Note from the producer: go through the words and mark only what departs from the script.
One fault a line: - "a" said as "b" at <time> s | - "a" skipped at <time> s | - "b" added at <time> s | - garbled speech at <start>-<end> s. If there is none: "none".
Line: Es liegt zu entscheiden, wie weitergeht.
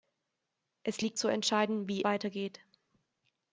none